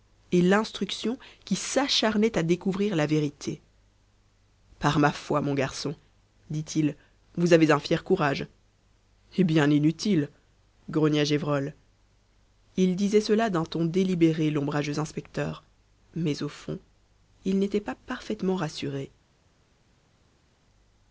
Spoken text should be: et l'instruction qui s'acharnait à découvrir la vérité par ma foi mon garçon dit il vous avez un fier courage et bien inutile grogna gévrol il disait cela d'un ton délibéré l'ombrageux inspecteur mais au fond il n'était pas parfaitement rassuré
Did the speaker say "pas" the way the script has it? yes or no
yes